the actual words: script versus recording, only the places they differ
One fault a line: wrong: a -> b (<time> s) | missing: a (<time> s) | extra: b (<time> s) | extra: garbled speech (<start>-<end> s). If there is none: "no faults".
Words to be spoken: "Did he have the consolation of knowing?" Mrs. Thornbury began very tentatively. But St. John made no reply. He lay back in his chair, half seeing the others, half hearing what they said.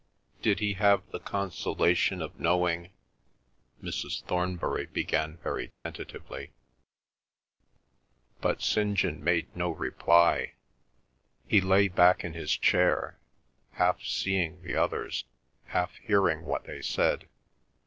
no faults